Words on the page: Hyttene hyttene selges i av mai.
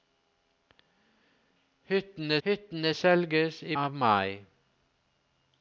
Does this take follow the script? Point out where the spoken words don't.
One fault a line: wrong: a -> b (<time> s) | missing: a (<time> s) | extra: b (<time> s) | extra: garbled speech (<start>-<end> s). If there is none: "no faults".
no faults